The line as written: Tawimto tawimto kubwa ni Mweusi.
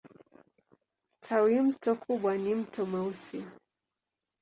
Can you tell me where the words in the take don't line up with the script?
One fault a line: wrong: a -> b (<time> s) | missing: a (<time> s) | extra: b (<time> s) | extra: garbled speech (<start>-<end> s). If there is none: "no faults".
missing: tawimto (1.9 s)
extra: Mto (2.5 s)